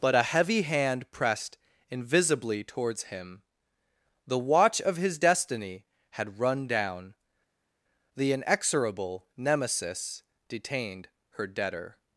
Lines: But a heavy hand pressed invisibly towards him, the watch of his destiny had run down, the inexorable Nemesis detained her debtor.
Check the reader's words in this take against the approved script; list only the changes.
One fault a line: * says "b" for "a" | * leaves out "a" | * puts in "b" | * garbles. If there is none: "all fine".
all fine